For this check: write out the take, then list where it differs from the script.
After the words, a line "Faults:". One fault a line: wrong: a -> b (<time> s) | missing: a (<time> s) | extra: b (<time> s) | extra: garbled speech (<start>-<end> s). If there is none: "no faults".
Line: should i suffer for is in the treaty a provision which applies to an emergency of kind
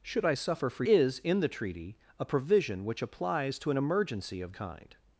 should i suffer for is in the treaty a provision which applies to an emergency of kind
Faults:
no faults